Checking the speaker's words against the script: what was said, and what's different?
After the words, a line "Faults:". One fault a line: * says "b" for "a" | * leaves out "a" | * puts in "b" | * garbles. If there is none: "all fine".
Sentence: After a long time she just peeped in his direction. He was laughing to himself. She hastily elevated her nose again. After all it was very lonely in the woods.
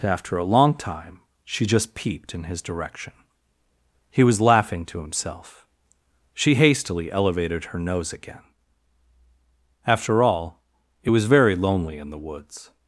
After a long time she just peeped in his direction. He was laughing to himself. She hastily elevated her nose again. After all it was very lonely in the woods.
Faults:
all fine